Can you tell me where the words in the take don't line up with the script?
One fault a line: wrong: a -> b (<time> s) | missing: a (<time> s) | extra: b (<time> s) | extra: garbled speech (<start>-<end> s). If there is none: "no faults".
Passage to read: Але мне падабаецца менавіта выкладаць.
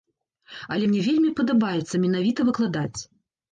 extra: вельмі (1.1 s)